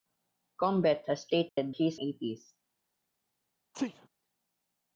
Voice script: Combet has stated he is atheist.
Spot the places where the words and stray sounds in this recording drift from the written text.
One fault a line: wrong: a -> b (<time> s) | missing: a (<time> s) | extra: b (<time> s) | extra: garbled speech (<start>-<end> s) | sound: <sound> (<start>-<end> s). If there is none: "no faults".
sound: dropout (1.5-1.6 s)
sound: sneeze (3.7-4.1 s)